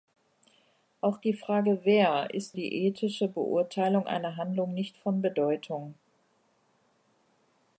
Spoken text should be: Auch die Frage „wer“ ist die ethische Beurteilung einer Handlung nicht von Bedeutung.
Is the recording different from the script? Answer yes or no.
no